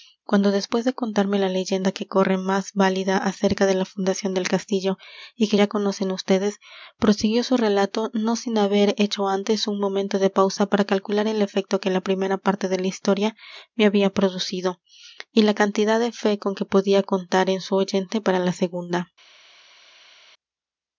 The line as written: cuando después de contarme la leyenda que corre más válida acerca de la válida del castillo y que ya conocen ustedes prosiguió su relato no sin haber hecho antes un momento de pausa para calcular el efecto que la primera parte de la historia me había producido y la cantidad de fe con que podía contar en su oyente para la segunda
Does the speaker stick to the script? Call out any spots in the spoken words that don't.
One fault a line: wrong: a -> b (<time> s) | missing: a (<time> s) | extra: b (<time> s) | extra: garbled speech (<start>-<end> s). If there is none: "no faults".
wrong: válida -> fundación (3.9 s)